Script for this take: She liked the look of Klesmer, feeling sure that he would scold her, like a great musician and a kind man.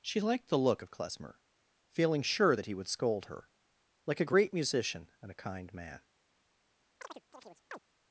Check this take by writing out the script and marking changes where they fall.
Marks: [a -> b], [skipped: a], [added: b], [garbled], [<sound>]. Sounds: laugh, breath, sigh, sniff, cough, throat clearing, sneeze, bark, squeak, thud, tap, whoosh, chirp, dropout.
She liked the look of Klesmer, feeling sure that he would scold her, like a great musician and a kind man. [chirp]